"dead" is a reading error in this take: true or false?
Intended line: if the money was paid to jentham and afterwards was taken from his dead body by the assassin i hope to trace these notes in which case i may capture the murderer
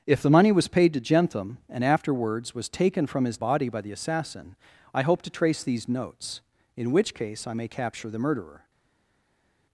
true